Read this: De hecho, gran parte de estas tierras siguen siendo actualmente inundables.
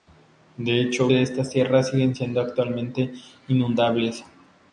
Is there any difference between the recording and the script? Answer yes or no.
yes